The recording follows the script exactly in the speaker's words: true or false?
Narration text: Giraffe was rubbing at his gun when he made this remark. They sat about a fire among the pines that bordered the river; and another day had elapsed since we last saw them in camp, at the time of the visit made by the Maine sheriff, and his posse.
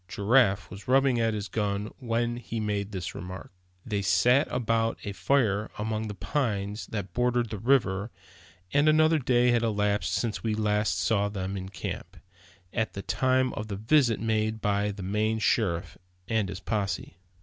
true